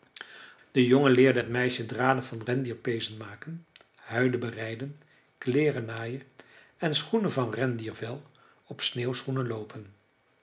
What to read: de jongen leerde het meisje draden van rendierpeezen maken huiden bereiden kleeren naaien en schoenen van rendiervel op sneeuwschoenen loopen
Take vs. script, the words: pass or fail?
pass